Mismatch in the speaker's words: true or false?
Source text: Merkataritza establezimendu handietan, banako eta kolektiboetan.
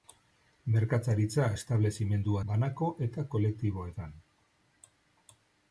true